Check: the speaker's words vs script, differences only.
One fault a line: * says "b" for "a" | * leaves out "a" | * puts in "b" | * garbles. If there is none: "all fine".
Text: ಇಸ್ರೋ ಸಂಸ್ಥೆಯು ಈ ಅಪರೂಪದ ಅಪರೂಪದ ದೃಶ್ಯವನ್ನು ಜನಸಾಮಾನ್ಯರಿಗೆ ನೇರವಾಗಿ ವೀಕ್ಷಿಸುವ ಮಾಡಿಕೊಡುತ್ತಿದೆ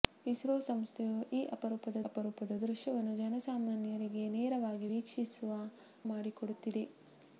all fine